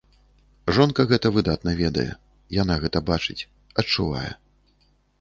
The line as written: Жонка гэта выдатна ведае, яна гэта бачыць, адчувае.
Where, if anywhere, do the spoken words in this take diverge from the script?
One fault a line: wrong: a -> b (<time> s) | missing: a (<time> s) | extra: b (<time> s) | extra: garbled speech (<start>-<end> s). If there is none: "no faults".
no faults